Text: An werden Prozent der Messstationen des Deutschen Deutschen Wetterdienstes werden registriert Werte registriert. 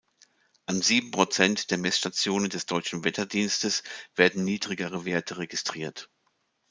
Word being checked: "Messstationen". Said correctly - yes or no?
yes